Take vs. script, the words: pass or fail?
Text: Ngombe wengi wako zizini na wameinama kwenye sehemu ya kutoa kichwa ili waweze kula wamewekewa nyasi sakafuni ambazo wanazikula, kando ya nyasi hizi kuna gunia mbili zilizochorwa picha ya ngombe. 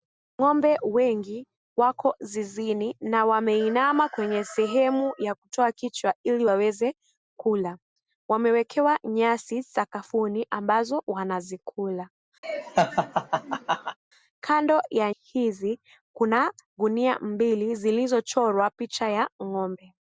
fail